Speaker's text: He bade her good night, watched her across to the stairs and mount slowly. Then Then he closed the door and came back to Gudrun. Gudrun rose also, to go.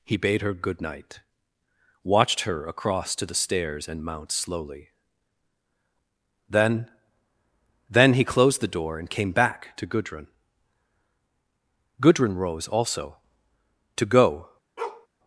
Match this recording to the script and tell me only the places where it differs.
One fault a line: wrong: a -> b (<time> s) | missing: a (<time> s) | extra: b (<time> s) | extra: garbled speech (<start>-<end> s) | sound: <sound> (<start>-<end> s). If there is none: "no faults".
sound: bark (14.8-15.1 s)